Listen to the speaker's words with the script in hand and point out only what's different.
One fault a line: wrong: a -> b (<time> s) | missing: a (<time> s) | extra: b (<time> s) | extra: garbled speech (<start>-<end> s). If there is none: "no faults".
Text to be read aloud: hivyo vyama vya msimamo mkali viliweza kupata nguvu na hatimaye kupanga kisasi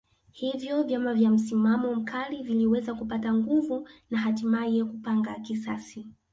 no faults